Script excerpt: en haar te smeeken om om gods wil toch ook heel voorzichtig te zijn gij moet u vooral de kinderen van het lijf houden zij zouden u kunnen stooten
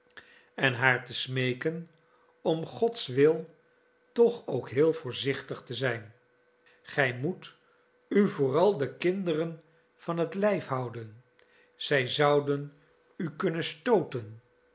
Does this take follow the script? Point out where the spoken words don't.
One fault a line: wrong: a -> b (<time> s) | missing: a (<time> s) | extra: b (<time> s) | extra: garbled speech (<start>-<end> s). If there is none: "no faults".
missing: om (2.6 s)